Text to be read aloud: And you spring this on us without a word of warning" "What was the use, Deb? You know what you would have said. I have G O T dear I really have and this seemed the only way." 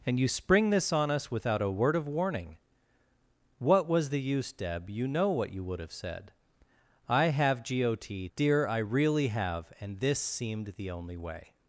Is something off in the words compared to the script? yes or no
no